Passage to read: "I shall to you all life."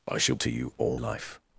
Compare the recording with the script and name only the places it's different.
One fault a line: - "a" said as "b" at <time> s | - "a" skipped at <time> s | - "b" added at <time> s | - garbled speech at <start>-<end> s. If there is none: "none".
none